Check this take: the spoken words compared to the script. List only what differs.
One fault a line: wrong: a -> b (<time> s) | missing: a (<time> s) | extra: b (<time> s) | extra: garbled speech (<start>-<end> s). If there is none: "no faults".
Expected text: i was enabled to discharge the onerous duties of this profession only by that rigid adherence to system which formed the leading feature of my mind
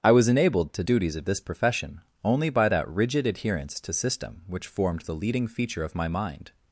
missing: discharge the onerous (0.8 s)